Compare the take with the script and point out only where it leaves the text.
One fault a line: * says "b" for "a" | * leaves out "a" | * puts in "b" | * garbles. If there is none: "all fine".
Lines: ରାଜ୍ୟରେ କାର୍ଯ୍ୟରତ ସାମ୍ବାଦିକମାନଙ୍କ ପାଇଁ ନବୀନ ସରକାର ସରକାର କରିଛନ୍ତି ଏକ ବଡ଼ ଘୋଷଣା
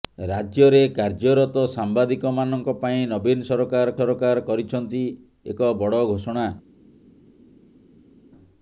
all fine